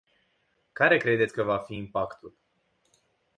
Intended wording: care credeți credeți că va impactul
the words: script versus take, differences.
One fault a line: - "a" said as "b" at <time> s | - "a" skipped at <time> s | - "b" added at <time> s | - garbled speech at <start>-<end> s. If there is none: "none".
- "credeți" skipped at 1.3 s
- "fi" added at 1.6 s